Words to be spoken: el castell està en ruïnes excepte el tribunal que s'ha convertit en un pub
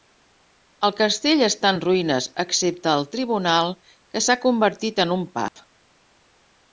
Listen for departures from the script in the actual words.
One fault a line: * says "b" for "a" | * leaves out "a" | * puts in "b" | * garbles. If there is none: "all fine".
all fine